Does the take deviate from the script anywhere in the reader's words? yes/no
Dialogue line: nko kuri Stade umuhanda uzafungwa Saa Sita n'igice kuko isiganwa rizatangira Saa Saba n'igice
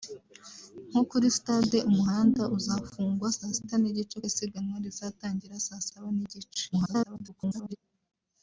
yes